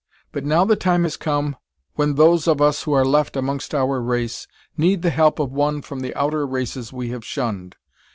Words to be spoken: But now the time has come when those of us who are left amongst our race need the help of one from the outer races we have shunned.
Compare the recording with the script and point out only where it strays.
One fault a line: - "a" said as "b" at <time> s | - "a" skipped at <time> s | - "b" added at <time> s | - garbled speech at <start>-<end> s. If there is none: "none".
none